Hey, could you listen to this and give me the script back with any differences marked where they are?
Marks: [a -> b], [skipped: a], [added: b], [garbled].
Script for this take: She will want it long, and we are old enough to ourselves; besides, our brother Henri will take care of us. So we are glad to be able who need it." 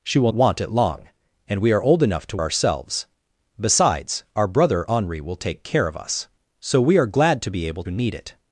She will want it long, and we are old enough to ourselves; besides, our brother Henri will take care of us. So we are glad to be able who need it."